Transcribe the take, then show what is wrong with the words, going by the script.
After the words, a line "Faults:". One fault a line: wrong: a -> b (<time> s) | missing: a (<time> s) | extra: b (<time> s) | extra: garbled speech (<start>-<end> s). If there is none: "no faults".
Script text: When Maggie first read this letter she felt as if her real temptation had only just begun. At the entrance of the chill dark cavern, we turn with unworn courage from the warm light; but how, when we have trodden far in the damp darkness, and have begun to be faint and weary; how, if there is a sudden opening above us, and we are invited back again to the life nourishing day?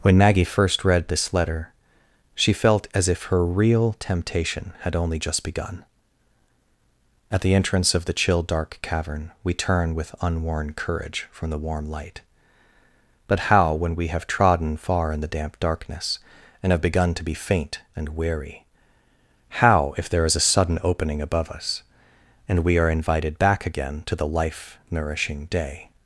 When Maggie first read this letter she felt as if her real temptation had only just begun. At the entrance of the chill dark cavern, we turn with unworn courage from the warm light; but how, when we have trodden far in the damp darkness, and have begun to be faint and weary; how, if there is a sudden opening above us, and we are invited back again to the life nourishing day?
Faults:
no faults